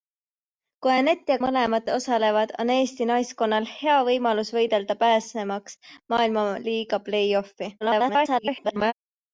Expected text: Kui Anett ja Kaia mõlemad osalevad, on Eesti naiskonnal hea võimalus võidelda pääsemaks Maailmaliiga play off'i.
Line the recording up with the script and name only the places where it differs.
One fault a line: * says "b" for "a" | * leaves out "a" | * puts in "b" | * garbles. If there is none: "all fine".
* leaves out "Kaia"
* garbles